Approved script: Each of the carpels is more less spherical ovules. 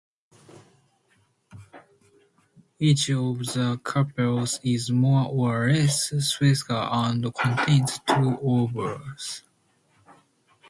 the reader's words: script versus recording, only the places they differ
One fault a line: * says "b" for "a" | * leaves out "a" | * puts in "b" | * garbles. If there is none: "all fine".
* puts in "or"
* puts in "and contains two"